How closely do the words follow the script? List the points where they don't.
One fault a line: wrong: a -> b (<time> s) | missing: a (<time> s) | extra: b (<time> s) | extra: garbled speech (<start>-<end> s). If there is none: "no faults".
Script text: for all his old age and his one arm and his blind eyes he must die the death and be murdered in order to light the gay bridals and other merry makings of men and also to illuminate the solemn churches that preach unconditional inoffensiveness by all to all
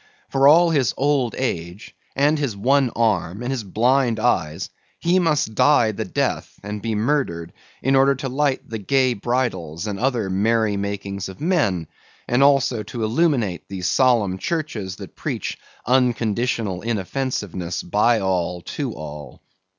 no faults